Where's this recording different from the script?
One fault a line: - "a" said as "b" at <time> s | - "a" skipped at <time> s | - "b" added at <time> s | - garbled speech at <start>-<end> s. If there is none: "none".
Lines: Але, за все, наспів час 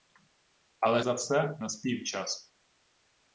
none